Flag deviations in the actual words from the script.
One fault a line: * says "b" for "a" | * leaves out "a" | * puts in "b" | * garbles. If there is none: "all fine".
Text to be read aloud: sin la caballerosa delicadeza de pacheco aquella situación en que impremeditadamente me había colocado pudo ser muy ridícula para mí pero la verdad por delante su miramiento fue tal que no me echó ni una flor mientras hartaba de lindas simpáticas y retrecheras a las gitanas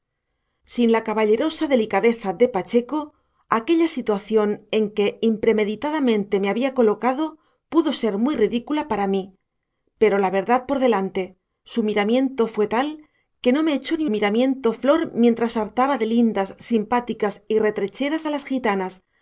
* says "miramiento" for "una"